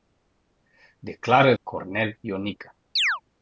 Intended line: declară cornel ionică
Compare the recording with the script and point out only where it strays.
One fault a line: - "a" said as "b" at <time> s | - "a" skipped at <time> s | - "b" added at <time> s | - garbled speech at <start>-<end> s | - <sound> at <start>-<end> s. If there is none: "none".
- chirp at 3.0-3.2 s